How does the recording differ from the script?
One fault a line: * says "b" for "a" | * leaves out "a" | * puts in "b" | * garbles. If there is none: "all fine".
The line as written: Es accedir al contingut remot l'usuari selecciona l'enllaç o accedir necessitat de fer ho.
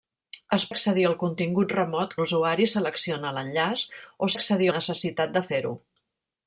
all fine